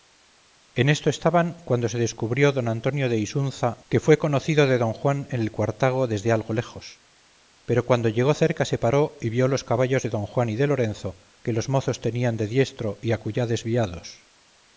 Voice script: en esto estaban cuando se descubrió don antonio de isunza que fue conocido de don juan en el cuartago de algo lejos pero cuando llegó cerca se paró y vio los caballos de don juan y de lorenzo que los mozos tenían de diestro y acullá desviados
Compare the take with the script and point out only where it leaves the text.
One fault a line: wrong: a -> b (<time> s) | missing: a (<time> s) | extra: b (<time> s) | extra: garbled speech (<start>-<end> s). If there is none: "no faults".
wrong: de -> desde (6.1 s)